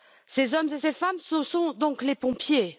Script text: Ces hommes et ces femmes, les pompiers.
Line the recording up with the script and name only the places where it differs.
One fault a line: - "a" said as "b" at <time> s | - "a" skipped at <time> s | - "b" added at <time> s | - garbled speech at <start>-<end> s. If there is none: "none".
- "ce sont donc" added at 1.2 s